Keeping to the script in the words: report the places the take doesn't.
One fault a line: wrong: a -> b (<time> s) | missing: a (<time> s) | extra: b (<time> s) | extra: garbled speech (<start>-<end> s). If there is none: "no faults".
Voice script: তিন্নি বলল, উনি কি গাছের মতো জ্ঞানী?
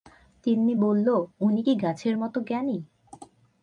no faults